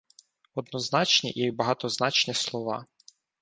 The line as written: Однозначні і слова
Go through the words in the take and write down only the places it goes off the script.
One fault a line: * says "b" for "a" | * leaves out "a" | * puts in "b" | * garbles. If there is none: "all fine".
* puts in "багатозначні"